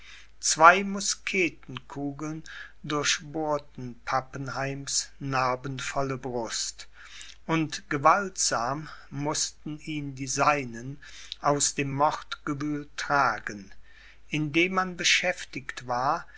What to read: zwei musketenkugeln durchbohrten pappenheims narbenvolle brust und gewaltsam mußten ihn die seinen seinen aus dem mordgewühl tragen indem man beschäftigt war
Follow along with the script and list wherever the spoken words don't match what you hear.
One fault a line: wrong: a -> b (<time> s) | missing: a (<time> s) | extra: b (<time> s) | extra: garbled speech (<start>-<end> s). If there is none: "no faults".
missing: seinen (11.0 s)